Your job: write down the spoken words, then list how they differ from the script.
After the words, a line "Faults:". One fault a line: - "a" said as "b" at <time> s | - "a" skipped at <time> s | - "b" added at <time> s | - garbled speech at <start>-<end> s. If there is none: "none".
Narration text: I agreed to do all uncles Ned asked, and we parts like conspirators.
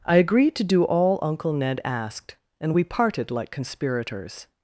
I agreed to do all uncle Ned asked, and we parted like conspirators.
Faults:
- "uncles" said as "uncle" at 1.2 s
- "parts" said as "parted" at 2.8 s